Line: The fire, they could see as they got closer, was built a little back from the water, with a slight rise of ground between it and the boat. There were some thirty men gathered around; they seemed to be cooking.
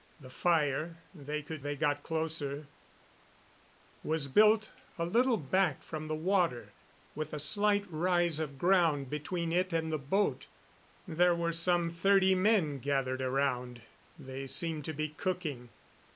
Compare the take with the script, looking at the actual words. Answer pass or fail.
fail